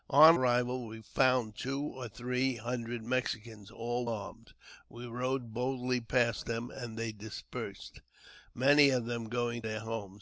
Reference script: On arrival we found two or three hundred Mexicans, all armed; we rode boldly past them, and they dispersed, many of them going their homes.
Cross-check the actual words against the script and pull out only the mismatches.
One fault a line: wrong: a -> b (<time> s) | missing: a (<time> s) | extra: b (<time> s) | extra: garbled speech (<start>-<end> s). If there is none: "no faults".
no faults